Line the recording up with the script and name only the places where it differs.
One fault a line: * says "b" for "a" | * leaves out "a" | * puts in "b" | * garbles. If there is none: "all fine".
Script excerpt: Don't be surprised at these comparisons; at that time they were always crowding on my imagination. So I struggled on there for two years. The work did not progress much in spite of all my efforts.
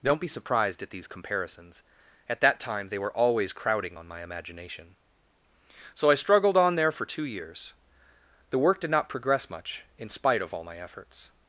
all fine